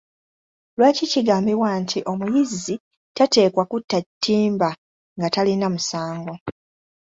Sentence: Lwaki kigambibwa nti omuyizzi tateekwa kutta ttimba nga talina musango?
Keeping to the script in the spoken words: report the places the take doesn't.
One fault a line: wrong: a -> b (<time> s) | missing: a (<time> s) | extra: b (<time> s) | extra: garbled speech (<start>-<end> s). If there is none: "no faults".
no faults